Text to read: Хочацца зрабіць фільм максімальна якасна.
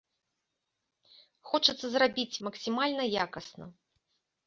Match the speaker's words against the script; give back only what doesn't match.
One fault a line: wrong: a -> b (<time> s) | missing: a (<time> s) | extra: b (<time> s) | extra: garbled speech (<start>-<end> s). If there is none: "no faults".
missing: фільм (2.4 s)